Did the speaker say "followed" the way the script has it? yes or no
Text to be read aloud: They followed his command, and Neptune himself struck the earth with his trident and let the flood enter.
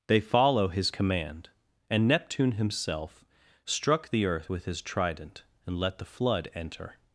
no